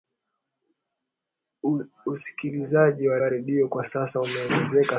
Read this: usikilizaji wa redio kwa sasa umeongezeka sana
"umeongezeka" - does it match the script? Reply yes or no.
yes